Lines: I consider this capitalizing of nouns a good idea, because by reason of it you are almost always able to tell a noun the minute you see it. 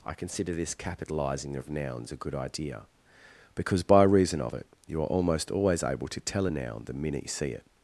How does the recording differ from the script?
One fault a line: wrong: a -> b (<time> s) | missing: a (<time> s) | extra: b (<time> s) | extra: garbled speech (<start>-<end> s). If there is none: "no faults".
no faults